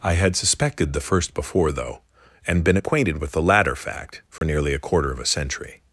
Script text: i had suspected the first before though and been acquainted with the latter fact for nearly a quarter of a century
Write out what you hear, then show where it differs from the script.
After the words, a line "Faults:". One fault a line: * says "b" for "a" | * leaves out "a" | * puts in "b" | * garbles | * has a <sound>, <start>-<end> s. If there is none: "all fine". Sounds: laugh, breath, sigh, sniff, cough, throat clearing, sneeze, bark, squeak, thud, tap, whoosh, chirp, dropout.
i had suspected the first before though and been acquainted with the latter fact for nearly a quarter of a century
Faults:
* has a dropout, 4.4-4.4 s